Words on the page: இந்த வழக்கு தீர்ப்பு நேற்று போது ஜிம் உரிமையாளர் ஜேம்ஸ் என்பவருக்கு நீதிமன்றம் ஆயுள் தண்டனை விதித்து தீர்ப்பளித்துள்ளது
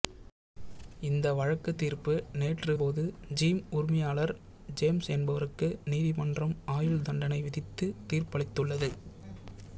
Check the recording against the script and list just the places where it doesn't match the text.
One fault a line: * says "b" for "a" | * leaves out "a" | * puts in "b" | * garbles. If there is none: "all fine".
all fine